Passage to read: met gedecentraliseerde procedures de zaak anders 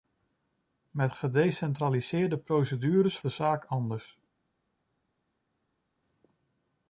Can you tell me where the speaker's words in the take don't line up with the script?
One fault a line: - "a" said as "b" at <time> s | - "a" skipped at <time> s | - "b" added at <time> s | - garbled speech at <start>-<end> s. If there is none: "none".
none